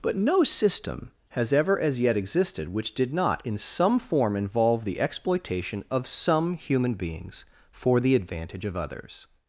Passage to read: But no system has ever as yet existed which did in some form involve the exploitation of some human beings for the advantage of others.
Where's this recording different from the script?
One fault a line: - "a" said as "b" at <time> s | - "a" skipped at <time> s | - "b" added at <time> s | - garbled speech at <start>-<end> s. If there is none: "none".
- "not" added at 3.1 s